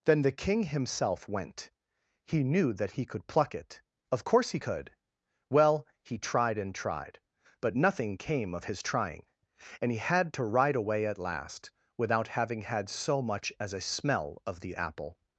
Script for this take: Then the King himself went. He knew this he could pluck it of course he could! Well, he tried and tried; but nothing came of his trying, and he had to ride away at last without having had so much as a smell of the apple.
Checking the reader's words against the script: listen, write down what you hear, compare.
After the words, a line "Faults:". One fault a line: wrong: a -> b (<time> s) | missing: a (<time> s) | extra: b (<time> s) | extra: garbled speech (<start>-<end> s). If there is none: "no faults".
Then the King himself went. He knew that he could pluck it of course he could! Well, he tried and tried; but nothing came of his trying, and he had to ride away at last without having had so much as a smell of the apple.
Faults:
wrong: this -> that (2.7 s)